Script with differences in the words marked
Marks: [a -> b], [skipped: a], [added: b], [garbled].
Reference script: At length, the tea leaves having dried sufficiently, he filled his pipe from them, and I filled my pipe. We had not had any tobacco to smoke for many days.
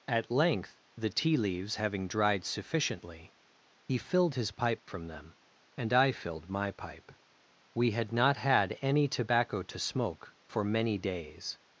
At length, the tea leaves having dried sufficiently, he filled his pipe from them, and I filled my pipe. We had not had any tobacco to smoke for many days.